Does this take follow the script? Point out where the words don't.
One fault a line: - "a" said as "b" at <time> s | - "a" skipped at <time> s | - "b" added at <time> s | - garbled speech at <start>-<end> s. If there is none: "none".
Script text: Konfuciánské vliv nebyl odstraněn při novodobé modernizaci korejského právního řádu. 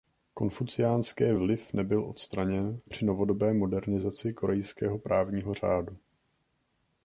none